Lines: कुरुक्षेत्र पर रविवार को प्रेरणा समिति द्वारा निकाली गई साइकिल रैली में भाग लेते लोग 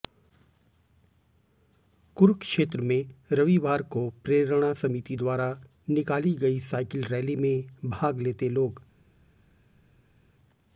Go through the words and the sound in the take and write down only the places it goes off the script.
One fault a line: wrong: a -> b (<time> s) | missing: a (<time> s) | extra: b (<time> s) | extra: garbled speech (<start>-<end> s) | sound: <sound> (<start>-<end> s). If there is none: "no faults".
wrong: पर -> में (2.8 s)